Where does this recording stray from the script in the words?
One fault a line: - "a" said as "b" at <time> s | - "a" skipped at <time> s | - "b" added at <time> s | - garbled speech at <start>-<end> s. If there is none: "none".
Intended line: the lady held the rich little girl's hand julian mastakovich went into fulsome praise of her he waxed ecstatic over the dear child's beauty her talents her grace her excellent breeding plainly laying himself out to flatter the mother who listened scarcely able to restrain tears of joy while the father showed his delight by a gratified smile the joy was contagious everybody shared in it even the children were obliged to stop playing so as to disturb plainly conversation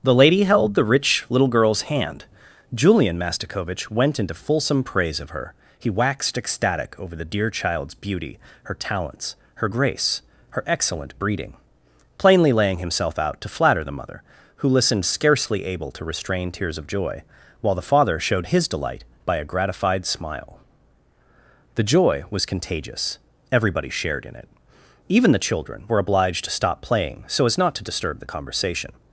- "not" added at 27.6 s
- "plainly" said as "the" at 28.2 s